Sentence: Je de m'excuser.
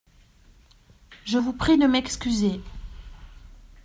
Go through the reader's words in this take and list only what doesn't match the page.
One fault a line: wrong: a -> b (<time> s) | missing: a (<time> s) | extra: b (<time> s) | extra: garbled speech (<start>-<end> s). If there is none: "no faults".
extra: vous prie (1.3 s)